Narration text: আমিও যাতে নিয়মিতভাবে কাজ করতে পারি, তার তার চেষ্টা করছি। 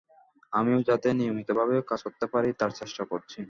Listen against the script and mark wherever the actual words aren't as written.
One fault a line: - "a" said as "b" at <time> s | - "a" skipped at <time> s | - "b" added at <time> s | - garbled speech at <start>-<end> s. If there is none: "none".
- "তার" skipped at 2.7 s